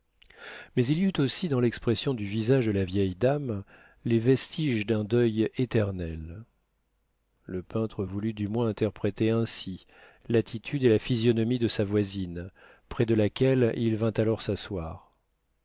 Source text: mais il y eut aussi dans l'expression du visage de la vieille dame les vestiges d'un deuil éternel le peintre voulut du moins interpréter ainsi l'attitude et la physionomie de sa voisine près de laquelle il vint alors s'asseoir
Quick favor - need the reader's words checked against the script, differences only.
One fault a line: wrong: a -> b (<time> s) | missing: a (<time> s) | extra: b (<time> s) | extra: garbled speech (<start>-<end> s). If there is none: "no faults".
no faults